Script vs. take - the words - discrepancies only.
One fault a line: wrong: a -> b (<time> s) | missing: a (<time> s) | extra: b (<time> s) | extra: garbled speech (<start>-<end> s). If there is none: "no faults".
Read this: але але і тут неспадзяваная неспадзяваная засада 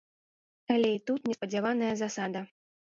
missing: але (0.9 s)
missing: неспадзяваная (1.9 s)